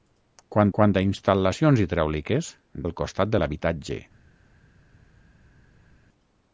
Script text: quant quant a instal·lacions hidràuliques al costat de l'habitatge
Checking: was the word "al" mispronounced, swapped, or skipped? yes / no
no